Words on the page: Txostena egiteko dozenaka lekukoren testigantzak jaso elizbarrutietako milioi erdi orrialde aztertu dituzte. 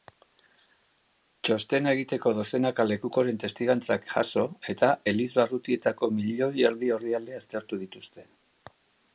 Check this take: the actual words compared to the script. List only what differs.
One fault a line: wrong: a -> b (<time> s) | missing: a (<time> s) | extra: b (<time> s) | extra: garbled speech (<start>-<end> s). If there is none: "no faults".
extra: eta (4.8 s)